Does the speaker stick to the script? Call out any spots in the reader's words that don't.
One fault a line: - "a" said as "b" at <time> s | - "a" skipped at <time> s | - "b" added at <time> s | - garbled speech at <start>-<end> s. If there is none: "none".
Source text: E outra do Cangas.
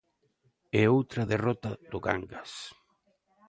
- "derrota" added at 1.3 s